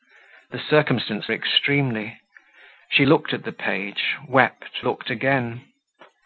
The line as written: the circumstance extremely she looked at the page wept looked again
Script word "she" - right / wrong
right